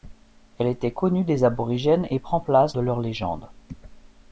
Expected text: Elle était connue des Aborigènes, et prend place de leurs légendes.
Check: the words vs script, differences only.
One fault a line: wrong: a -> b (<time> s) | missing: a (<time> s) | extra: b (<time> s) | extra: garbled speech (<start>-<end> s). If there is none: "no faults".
no faults